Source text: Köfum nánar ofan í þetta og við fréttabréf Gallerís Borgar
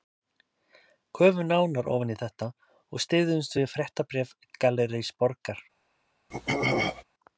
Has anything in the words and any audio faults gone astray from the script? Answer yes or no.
yes